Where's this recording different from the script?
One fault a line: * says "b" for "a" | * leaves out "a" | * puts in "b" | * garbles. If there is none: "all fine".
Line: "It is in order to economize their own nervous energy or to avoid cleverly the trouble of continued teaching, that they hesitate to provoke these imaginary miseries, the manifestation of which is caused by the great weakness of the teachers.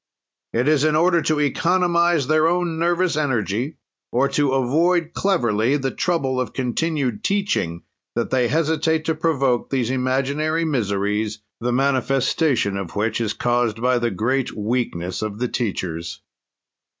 all fine